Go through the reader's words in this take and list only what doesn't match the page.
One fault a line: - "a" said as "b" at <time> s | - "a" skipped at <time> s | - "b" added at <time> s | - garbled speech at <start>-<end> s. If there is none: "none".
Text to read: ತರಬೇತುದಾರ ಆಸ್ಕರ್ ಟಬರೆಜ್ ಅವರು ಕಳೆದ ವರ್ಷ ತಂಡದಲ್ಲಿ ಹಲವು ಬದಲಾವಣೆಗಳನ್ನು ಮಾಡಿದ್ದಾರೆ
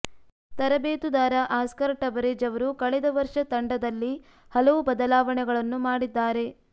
none